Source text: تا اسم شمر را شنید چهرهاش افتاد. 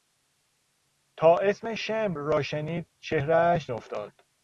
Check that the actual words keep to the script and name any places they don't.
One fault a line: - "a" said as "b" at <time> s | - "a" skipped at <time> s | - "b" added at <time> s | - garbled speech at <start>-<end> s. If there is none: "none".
none